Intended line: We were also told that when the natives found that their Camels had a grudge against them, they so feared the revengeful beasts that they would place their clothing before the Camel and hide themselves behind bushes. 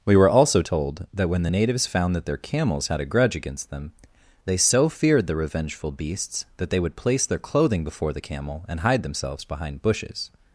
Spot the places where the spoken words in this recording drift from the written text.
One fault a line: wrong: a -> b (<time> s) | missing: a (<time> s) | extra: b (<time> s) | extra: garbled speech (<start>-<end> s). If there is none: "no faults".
no faults